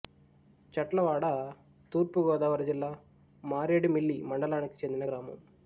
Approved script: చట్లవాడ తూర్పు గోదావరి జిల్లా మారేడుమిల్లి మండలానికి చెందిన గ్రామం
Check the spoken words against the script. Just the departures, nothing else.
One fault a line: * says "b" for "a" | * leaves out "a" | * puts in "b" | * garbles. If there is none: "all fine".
all fine